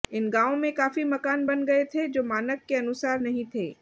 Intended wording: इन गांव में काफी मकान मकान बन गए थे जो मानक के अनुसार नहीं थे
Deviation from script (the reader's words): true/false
true